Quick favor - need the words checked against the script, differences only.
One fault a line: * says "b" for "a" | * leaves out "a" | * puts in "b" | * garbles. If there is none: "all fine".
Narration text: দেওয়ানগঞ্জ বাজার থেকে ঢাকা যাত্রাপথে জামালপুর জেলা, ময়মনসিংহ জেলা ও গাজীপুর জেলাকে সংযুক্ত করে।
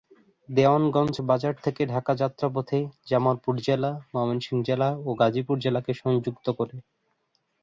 all fine